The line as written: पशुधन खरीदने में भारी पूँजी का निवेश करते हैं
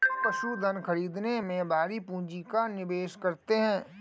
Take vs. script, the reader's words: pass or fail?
pass